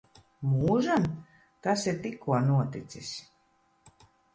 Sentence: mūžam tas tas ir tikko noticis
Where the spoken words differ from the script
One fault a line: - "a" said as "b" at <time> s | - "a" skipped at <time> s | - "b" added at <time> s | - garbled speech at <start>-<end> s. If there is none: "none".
- "tas" skipped at 1.9 s